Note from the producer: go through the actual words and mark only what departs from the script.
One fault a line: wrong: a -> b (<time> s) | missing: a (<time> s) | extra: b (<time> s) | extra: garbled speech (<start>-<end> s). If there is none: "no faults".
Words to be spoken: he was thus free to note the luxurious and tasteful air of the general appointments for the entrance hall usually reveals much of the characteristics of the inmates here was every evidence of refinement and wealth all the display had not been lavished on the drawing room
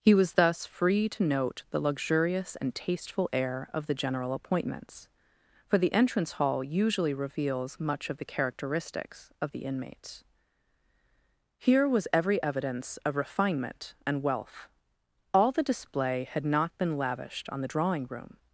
no faults